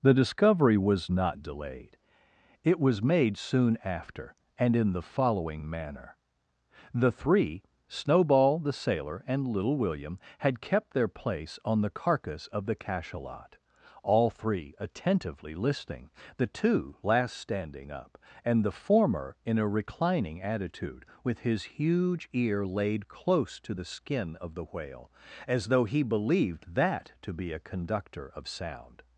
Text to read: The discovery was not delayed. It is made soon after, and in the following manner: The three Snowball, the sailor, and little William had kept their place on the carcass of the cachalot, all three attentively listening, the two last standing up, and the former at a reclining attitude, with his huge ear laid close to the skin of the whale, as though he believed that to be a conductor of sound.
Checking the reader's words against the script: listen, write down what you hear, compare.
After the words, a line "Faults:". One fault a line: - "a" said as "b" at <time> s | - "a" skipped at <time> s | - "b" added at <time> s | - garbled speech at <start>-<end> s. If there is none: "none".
The discovery was not delayed. It was made soon after, and in the following manner: The three Snowball, the sailor, and little William had kept their place on the carcass of the cachalot, all three attentively listening, the two last standing up, and the former in a reclining attitude, with his huge ear laid close to the skin of the whale, as though he believed that to be a conductor of sound.
Faults:
- "is" said as "was" at 2.8 s
- "at" said as "in" at 19.4 s